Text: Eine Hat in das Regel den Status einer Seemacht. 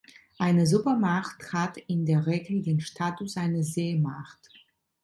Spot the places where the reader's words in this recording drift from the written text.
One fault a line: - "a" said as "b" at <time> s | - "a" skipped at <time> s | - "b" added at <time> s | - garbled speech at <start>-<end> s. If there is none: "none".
- "Supermacht" added at 0.7 s
- "das" said as "der" at 2.0 s